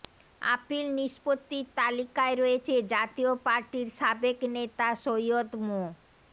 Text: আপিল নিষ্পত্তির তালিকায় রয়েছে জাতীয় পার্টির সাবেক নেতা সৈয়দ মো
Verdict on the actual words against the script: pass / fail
pass